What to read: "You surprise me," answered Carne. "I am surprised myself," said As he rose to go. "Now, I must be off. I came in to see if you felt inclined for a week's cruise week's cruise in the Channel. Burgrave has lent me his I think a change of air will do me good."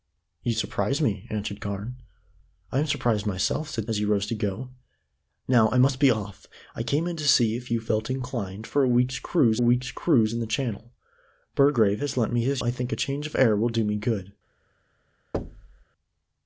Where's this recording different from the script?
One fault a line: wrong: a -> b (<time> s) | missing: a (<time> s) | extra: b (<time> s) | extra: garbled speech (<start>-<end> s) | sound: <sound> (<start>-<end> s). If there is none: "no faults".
sound: thud (15.3-15.8 s)